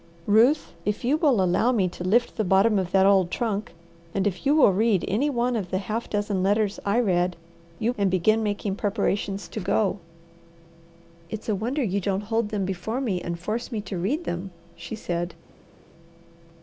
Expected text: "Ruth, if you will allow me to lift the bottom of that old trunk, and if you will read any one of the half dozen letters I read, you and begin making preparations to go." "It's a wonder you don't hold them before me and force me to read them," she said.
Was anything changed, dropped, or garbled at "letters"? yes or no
no